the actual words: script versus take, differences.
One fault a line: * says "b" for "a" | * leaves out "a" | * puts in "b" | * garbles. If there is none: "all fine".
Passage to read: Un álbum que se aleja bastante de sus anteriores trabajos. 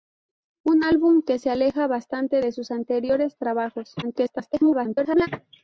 * garbles